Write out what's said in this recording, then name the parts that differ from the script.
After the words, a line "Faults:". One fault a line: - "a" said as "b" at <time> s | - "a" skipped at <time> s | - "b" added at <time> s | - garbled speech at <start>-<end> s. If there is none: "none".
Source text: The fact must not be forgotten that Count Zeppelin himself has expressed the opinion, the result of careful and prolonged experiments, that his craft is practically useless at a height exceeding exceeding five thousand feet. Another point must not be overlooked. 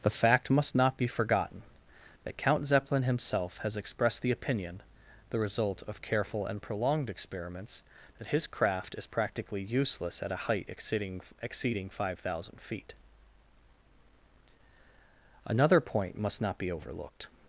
The fact must not be forgotten that Count Zeppelin himself has expressed the opinion, the result of careful and prolonged experiments, that his craft is practically useless at a height exceeding exceeding five thousand feet. Another point must not be overlooked.
Faults:
none